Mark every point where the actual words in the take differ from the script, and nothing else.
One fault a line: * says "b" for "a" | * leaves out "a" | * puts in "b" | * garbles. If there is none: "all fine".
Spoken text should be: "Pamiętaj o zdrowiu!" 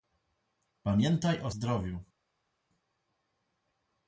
all fine